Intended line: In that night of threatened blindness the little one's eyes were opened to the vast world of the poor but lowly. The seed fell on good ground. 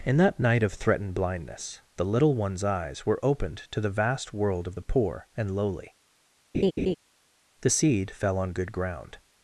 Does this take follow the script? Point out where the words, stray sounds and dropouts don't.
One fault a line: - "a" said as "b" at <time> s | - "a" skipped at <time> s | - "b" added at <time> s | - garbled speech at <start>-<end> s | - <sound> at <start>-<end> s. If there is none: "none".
- "but" said as "and" at 5.4 s
- laugh at 6.5-7.0 s